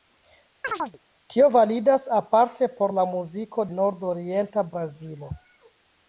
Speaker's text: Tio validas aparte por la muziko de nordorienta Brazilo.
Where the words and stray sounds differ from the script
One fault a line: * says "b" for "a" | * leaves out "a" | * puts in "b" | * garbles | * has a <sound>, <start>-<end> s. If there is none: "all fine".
* has a chirp, 0.6-1.0 s
* leaves out "de"